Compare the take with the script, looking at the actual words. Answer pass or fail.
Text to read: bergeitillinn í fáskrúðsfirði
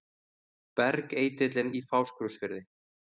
pass